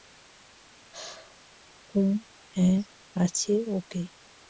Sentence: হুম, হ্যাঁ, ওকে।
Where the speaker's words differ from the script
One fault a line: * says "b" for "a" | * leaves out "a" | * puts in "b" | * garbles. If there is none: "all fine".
* puts in "আছে"